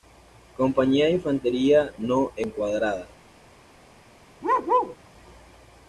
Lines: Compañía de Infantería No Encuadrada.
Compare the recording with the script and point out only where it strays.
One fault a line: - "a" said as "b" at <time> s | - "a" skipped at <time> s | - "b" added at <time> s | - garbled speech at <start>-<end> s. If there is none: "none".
none